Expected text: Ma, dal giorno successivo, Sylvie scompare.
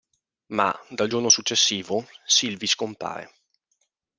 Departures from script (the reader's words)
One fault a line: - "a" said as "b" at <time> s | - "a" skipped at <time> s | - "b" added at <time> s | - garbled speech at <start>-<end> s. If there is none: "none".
none